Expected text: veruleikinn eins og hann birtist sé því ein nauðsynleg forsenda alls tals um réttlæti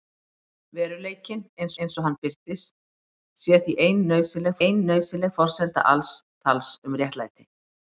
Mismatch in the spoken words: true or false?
true